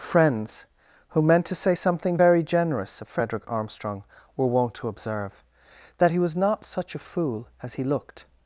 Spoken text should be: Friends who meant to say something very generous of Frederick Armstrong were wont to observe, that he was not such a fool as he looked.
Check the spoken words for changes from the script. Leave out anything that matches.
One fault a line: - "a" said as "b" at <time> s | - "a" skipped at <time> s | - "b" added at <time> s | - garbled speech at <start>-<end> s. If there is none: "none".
none